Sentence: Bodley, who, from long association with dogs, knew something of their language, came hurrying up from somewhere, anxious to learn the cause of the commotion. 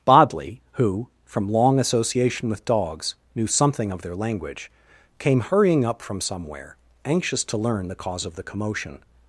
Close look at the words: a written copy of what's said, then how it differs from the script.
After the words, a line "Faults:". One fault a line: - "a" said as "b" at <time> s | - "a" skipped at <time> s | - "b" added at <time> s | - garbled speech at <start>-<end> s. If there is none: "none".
Bodley, who, from long association with dogs, knew something of their language, came hurrying up from somewhere, anxious to learn the cause of the commotion.
Faults:
none